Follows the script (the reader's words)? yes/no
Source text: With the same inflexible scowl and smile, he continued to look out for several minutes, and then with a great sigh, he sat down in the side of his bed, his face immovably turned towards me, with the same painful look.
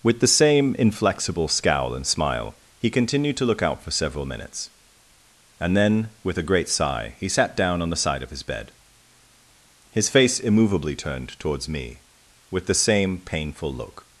no